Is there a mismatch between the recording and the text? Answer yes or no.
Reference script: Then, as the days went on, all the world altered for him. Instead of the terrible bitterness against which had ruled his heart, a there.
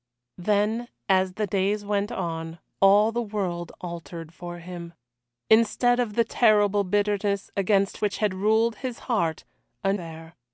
no